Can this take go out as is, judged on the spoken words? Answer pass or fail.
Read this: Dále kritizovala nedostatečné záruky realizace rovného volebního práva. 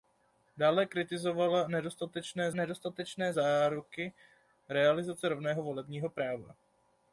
fail